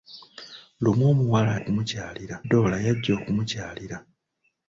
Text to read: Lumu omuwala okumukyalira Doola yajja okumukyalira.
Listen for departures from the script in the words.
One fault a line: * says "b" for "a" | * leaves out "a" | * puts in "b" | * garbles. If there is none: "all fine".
all fine